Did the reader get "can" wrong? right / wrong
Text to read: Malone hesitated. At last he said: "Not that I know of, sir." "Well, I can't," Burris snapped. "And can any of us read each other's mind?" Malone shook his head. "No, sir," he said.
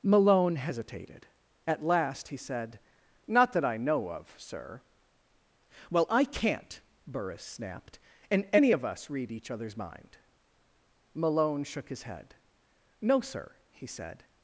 wrong